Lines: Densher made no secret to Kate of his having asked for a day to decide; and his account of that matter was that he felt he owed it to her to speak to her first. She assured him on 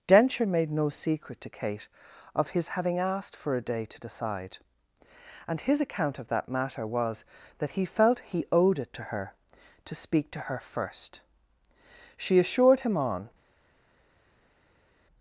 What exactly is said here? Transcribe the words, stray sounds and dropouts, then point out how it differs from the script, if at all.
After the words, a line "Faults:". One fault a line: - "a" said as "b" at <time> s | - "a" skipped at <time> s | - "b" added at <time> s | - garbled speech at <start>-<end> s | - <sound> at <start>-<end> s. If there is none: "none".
Densher made no secret to Kate of his having asked for a day to decide; and his account of that matter was that he felt he owed it to her to speak to her first. She assured him on
Faults:
none